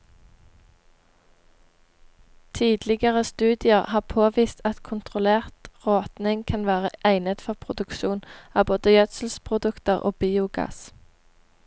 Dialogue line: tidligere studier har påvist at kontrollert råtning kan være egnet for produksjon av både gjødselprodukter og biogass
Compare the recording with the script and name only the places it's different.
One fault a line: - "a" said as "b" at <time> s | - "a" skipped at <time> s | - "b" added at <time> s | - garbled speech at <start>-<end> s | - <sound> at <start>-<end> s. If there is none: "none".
none